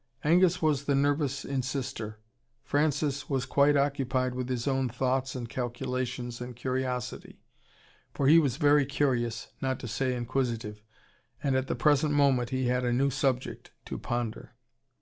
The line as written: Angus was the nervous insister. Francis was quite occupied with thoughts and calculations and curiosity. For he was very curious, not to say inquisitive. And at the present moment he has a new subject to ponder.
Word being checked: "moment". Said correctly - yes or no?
yes